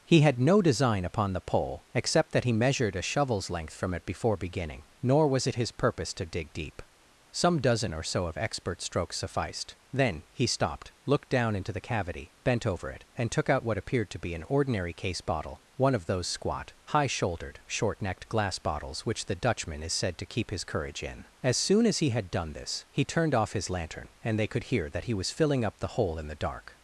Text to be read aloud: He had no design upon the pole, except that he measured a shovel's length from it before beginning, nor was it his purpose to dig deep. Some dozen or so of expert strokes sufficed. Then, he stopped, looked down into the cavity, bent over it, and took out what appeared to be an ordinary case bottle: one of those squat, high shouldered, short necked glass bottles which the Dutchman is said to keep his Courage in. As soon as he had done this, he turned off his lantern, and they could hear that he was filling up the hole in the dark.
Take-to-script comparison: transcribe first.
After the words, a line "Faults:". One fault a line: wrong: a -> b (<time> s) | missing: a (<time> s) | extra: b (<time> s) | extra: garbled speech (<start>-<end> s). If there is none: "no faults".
He had no design upon the pole, except that he measured a shovel's length from it before beginning, nor was it his purpose to dig deep. Some dozen or so of expert strokes sufficed. Then, he stopped, looked down into the cavity, bent over it, and took out what appeared to be an ordinary case bottle: one of those squat, high shouldered, short necked glass bottles which the Dutchman is said to keep his Courage in. As soon as he had done this, he turned off his lantern, and they could hear that he was filling up the hole in the dark.
Faults:
no faults